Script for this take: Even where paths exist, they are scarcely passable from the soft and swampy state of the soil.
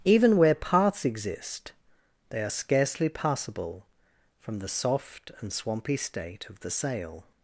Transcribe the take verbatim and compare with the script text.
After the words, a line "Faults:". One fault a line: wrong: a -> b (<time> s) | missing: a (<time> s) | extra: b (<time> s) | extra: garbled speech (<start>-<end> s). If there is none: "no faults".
Even where paths exist, they are scarcely passable from the soft and swampy state of the sail.
Faults:
wrong: soil -> sail (6.7 s)